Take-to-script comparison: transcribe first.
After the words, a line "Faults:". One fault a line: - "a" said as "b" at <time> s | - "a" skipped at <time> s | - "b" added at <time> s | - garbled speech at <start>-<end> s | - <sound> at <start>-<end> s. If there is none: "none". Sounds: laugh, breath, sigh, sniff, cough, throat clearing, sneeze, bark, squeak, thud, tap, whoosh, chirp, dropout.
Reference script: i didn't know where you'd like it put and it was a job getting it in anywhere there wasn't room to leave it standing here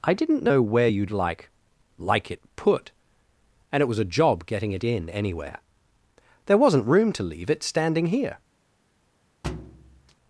i didn't know where you'd like like it put and it was a job getting it in anywhere there wasn't room to leave it standing here
Faults:
- "like" added at 2.0 s
- thud at 9.4-10.2 s